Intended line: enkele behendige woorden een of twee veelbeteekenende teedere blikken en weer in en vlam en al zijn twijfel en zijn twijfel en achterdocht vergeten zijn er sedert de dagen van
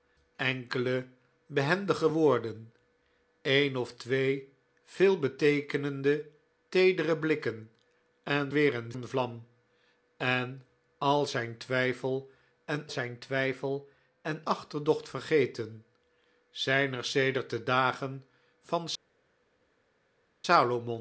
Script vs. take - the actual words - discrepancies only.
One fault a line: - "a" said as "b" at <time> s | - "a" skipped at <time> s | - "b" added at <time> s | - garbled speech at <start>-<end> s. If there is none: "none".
none